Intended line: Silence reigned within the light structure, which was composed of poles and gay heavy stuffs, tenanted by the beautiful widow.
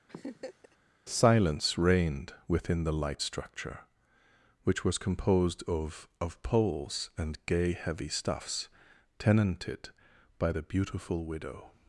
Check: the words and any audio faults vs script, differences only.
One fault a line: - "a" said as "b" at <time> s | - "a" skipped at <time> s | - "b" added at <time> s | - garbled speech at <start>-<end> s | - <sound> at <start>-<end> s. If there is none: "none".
- laugh at 0.1-0.8 s
- "of" added at 6.2 s